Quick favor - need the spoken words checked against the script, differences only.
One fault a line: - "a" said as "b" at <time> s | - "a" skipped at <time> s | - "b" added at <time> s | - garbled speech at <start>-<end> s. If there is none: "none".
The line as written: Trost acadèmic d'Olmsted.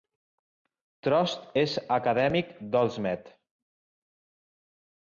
- "és" added at 1.6 s